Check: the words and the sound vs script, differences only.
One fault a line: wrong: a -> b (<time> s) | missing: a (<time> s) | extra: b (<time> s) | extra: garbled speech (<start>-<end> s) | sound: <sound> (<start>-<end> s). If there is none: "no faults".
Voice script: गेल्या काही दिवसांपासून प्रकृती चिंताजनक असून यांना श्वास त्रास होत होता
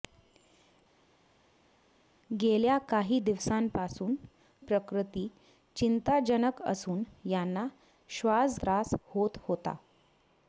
no faults